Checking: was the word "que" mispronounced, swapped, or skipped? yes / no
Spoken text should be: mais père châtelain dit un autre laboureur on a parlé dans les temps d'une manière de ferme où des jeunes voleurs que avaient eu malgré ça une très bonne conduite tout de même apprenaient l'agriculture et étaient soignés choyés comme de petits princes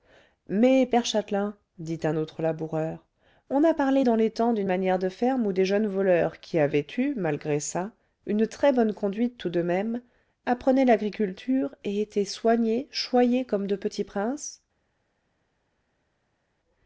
yes